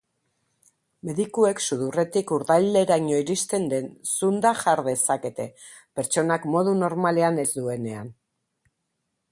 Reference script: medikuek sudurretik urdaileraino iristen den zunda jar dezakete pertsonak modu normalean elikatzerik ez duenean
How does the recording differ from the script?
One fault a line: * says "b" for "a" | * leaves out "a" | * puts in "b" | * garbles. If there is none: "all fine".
* leaves out "elikatzerik"